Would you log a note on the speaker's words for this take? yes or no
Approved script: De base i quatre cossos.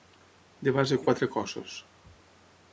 no